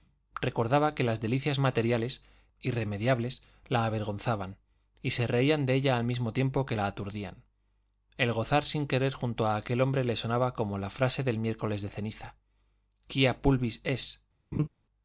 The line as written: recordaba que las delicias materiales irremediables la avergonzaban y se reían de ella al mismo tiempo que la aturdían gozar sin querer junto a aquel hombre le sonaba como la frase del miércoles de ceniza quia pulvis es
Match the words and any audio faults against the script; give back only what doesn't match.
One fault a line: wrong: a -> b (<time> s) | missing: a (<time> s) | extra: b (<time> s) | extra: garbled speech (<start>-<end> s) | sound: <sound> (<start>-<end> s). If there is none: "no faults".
extra: el (8.2 s)
sound: laugh (14.5-14.7 s)